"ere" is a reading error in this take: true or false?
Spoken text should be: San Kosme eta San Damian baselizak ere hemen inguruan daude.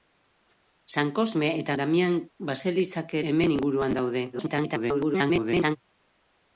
true